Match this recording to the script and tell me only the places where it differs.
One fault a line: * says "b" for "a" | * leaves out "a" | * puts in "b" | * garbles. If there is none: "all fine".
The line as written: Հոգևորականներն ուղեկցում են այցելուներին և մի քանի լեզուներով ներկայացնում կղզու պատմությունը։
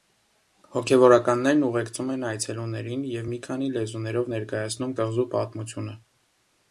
all fine